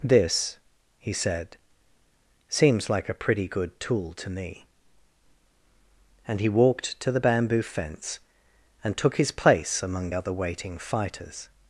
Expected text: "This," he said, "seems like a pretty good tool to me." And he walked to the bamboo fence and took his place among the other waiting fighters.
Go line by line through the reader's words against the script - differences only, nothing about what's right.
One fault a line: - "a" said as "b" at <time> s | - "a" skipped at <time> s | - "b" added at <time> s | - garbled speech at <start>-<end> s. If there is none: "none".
- "the" skipped at 10.1 s